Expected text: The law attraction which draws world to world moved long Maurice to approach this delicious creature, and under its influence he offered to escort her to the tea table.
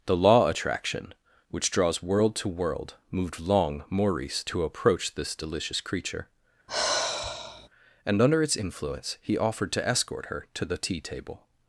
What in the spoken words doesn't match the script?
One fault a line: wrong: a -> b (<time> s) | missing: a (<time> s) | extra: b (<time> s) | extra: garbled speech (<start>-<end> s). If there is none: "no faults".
no faults